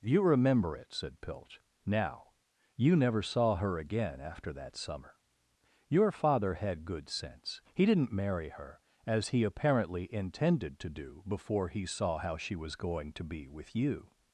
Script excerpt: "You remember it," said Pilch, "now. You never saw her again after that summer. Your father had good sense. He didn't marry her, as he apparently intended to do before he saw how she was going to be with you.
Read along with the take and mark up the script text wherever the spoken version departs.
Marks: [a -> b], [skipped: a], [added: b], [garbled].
"You remember it," said Pilch, "now. You never saw her again after that summer. Your father had good sense. He didn't marry her, as he apparently intended to do before he saw how she was going to be with you.